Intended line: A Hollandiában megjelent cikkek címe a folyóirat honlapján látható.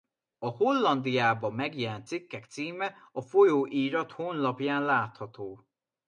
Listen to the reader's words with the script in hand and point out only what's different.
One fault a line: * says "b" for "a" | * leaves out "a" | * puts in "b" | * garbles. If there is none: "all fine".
all fine